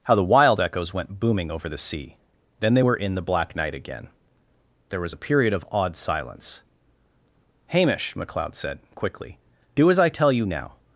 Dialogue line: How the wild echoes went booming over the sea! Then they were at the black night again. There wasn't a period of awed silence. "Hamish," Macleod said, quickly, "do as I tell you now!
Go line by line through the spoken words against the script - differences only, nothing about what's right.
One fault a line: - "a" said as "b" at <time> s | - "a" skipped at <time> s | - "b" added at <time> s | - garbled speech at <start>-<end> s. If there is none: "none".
- "at" said as "in" at 2.9 s
- "wasn't" said as "was" at 5.0 s